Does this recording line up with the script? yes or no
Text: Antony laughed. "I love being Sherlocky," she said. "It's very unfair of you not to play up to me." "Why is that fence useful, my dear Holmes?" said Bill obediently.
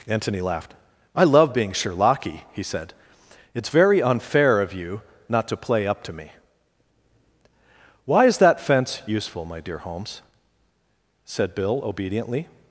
no